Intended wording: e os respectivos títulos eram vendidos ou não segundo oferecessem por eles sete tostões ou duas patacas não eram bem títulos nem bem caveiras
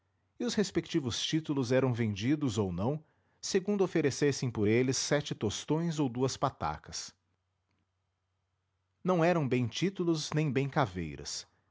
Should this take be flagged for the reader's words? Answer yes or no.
no